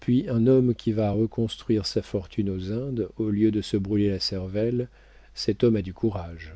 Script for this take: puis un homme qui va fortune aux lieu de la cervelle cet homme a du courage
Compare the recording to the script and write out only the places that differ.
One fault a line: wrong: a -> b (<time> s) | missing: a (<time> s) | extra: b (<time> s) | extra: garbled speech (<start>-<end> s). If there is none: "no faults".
extra: reconstruire sa (1.1 s)
extra: indes au (2.7 s)
extra: se brûler (3.6 s)